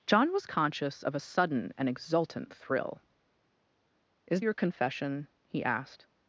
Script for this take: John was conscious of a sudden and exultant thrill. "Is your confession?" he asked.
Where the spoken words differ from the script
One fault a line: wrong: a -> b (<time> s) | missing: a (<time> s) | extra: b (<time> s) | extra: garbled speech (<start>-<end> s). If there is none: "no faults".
no faults